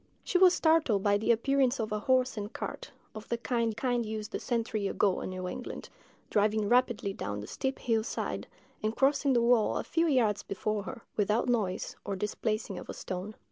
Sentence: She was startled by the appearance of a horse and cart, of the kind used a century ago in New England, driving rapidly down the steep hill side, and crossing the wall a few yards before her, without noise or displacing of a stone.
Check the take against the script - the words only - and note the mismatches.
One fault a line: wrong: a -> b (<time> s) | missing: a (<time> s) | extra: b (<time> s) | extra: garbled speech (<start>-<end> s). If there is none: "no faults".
extra: kind (3.7 s)